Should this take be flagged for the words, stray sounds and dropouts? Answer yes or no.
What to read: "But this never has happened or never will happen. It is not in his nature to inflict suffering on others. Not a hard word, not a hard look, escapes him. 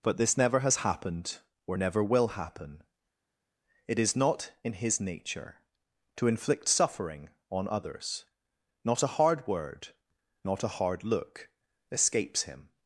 no